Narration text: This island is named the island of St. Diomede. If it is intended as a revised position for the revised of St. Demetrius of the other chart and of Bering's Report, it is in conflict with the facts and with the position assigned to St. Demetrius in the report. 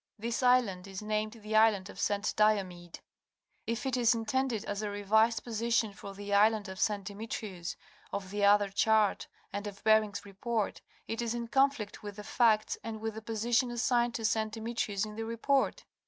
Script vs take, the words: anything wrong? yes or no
yes